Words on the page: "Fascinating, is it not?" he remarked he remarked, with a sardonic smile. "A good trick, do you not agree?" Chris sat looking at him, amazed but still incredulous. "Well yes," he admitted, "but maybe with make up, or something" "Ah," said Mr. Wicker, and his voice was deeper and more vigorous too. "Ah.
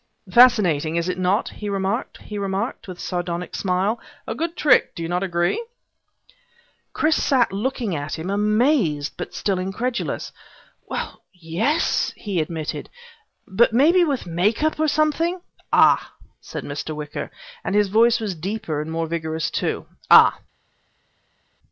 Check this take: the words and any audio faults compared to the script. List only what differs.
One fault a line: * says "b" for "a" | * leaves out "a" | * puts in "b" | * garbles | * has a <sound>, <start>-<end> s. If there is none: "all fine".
all fine